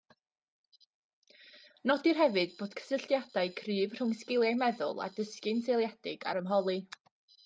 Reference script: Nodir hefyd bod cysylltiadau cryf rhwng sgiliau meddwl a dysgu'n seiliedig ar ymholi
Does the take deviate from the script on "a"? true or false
false